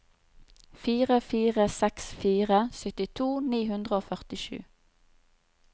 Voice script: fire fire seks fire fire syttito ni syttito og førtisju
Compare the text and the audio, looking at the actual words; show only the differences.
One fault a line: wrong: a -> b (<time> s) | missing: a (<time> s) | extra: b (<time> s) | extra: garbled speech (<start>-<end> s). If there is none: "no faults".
missing: fire (2.6 s)
wrong: syttito -> hundre (3.7 s)